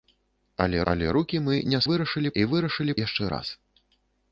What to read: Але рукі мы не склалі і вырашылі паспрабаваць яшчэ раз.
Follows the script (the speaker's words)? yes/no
no